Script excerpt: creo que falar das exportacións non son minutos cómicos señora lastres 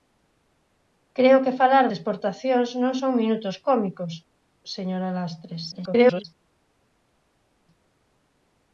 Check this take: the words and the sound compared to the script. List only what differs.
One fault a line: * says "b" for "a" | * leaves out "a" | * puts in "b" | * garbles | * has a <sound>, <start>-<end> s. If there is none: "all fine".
* leaves out "das"
* garbles